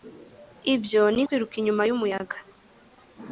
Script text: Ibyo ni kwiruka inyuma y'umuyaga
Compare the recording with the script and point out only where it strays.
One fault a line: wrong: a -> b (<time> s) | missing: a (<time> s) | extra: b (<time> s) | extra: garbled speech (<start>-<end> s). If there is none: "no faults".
no faults